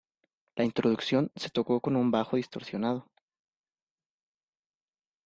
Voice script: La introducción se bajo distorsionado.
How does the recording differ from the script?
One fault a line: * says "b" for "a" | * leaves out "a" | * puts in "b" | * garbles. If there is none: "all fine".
* puts in "tocó con un"